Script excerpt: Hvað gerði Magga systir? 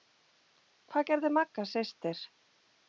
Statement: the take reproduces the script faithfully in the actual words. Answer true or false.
true